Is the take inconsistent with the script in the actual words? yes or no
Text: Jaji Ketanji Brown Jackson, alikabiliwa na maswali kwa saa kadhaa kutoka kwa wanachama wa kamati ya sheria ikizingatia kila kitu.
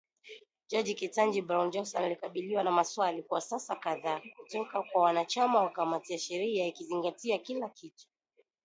no